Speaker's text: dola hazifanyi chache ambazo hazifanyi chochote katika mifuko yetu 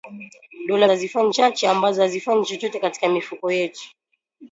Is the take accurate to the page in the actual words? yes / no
yes